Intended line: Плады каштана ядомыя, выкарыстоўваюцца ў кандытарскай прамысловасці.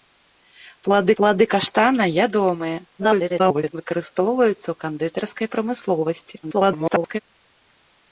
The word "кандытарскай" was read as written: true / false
true